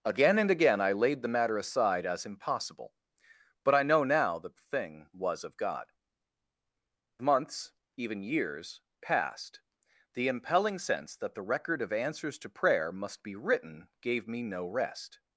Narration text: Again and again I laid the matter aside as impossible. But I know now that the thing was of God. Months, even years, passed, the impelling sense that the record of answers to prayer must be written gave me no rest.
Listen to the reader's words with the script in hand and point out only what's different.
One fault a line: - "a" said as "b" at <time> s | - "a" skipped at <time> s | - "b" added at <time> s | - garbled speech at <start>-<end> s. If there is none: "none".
none